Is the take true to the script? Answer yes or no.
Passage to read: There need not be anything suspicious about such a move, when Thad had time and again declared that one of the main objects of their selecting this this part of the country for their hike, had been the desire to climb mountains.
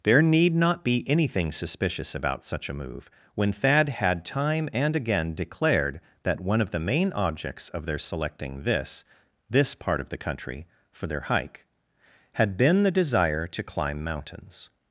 yes